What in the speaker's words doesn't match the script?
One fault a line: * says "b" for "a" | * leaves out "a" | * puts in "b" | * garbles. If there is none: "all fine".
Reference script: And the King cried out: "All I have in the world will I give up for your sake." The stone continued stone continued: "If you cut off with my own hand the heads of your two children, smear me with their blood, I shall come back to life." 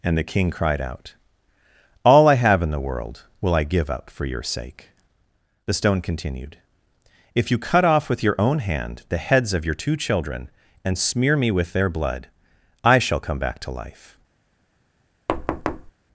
* leaves out "stone continued"
* says "your" for "my"
* puts in "and"